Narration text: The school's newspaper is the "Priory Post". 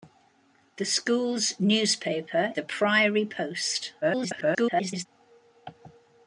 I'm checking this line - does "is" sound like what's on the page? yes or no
no